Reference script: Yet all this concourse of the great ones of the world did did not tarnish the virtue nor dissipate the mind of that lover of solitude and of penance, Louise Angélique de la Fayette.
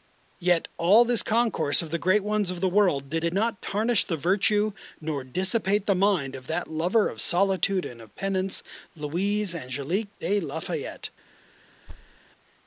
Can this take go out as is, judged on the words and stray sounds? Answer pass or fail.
fail